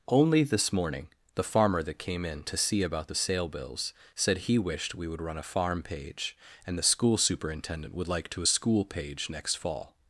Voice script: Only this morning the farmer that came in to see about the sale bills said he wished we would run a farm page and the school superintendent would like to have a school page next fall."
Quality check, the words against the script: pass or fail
fail